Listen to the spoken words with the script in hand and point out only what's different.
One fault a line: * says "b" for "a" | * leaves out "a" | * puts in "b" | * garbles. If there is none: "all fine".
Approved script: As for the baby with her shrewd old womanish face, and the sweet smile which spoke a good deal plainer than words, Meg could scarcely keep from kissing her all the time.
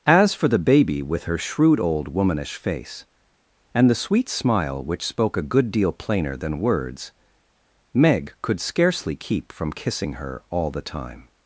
all fine